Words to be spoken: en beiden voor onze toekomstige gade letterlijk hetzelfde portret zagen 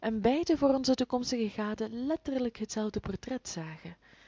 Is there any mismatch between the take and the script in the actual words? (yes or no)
no